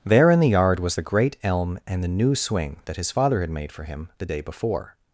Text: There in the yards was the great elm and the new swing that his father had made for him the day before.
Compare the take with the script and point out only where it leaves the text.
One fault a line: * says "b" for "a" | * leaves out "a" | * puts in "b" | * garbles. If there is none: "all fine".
* says "yard" for "yards"